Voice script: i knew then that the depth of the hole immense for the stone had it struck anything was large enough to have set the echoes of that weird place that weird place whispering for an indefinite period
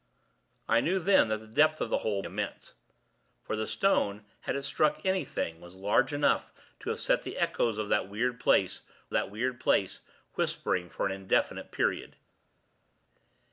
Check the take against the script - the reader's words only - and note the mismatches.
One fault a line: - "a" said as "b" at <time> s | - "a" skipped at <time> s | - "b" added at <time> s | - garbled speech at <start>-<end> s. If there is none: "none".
none